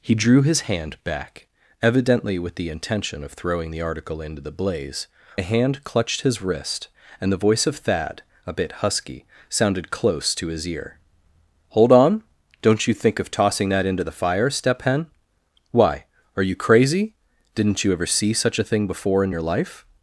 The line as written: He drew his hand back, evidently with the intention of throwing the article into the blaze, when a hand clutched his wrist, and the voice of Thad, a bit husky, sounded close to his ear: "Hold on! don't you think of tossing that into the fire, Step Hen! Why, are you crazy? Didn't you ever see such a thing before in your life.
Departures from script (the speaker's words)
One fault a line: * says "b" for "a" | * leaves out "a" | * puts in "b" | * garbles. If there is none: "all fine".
* leaves out "when"